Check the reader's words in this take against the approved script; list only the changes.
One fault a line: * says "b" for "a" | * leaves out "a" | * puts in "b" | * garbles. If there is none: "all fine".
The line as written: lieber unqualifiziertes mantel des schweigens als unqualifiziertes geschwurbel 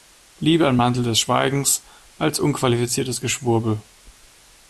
* says "ein" for "unqualifiziertes"